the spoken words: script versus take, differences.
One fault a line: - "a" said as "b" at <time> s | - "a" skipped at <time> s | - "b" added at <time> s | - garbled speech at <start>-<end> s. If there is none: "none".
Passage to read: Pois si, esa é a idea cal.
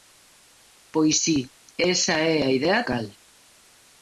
none